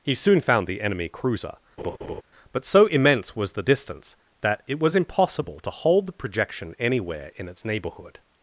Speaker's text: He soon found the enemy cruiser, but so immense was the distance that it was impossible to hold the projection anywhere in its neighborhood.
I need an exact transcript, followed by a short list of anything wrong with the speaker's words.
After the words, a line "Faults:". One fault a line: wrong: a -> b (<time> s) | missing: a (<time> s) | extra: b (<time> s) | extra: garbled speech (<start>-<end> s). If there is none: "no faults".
He soon found the enemy cruiser, but so immense was the distance that it was impossible to hold the projection anywhere in its neighborhood.
Faults:
no faults